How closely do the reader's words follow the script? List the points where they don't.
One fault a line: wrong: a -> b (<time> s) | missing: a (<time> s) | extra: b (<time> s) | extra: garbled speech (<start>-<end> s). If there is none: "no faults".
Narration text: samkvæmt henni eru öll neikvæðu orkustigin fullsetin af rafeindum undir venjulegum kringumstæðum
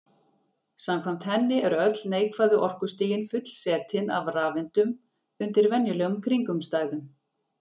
no faults